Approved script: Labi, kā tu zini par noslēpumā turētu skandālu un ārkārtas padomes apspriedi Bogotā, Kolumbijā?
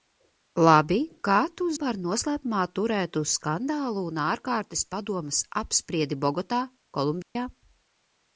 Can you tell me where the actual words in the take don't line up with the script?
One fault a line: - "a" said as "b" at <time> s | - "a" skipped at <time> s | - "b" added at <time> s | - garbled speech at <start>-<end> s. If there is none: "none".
- "zini" skipped at 1.7 s